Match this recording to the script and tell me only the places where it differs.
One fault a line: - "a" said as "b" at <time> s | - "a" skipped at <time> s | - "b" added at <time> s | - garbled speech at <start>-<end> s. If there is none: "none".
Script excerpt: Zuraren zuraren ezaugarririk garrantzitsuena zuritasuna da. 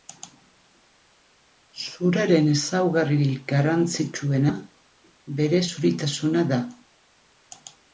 - "zuraren" skipped at 2.5 s
- "bere" added at 5.4 s